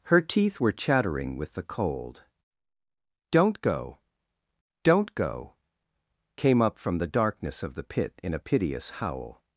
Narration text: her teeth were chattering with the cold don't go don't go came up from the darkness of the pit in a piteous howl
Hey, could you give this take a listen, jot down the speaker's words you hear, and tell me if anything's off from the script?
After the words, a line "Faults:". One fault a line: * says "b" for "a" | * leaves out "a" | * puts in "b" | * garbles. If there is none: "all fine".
her teeth were chattering with the cold don't go don't go came up from the darkness of the pit in a piteous howl
Faults:
all fine